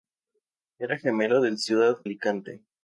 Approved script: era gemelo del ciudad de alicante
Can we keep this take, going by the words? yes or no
no